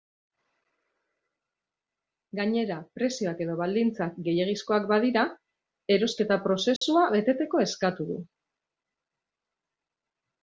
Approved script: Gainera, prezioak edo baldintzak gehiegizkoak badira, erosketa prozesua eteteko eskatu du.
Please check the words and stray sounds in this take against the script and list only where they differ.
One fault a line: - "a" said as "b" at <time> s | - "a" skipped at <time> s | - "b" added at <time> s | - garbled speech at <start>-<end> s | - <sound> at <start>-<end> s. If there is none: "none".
- dropout at 6.8-6.8 s